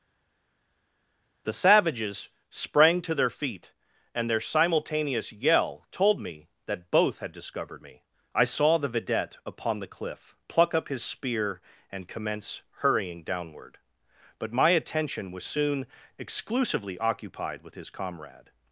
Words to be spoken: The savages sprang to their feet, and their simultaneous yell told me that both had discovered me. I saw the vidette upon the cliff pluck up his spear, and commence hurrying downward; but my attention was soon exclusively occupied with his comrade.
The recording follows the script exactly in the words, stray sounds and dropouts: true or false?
true